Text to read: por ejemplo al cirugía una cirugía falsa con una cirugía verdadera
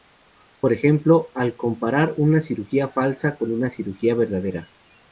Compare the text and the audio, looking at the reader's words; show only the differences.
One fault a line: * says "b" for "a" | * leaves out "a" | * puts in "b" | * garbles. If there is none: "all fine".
* says "comparar" for "cirugía"